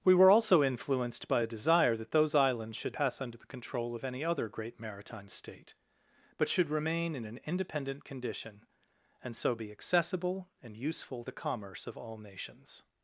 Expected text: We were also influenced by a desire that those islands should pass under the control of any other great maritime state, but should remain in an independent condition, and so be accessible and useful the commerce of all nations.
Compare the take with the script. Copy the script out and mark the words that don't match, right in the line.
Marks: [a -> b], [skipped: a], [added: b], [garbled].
We were also influenced by a desire that those islands should pass under the control of any other great maritime state, but should remain in an independent condition, and so be accessible and useful the commerce of all nations.